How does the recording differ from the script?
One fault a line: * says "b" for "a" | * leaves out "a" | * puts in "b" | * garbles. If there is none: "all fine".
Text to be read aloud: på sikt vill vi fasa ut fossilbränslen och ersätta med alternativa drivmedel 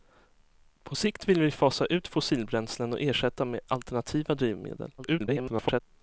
* garbles